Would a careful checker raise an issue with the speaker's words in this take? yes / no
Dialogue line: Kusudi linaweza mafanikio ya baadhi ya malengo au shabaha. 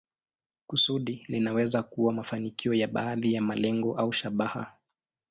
yes